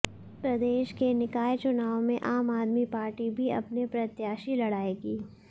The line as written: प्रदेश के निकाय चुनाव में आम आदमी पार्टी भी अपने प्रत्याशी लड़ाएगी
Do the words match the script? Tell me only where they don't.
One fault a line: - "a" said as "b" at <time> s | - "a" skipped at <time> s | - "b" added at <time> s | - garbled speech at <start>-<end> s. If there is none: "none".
none